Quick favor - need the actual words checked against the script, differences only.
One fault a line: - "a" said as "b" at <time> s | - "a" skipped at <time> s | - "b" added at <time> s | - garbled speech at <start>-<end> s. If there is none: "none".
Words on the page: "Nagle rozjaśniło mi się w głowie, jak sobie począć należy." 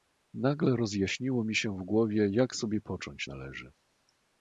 none